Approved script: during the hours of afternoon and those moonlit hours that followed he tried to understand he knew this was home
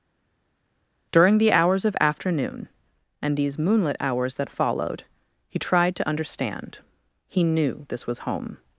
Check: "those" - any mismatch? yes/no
yes